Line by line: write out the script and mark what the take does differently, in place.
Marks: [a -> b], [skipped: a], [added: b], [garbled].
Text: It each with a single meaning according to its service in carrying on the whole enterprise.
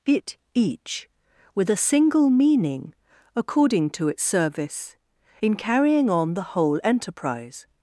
It each with a single meaning according to its service in carrying on the whole enterprise.